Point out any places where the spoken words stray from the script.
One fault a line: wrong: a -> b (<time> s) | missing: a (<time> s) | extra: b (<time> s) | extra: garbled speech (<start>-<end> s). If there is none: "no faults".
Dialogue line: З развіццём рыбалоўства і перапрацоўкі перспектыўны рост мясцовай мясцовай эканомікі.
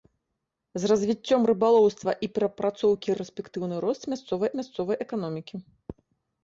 no faults